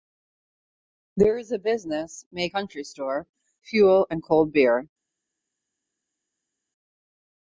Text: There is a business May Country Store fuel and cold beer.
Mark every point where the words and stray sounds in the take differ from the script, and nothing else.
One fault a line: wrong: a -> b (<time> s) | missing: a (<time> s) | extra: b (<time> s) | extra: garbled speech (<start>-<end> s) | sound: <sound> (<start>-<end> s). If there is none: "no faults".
no faults